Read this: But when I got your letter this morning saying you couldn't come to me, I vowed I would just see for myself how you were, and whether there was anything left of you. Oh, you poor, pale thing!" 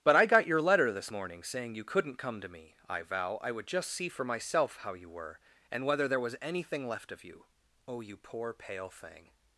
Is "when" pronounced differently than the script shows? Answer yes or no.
yes